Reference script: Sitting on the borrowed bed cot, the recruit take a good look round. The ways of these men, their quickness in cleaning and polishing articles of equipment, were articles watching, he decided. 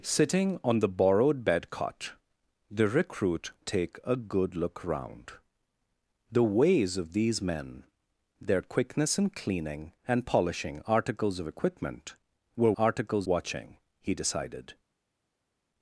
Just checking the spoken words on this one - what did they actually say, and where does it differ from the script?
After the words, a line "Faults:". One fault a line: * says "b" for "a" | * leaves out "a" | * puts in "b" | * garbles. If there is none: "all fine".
Sitting on the borrowed bed cot, the recruit take a good look round. The ways of these men, their quickness in cleaning and polishing articles of equipment, were articles watching, he decided.
Faults:
all fine